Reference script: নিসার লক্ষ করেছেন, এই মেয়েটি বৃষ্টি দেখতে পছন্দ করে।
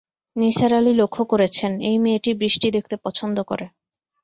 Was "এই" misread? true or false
false